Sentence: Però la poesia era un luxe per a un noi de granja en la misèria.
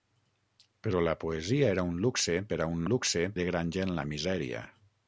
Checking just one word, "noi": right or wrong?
wrong